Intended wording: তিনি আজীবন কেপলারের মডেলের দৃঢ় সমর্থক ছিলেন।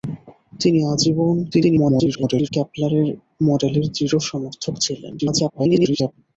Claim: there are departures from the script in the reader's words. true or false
true